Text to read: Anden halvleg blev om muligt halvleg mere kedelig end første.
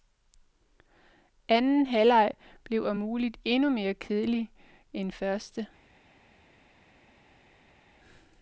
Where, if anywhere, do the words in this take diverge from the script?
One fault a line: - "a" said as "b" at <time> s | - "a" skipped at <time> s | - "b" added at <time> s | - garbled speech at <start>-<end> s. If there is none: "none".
- "halvleg" said as "endnu" at 3.4 s